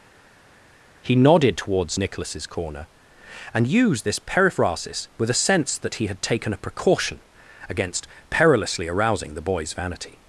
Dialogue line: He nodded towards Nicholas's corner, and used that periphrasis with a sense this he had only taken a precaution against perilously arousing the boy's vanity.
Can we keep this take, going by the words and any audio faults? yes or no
no